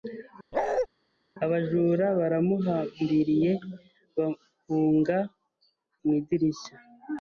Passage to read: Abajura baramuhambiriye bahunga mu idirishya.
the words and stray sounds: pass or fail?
fail